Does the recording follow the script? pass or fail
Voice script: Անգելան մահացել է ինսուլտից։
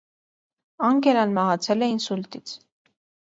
pass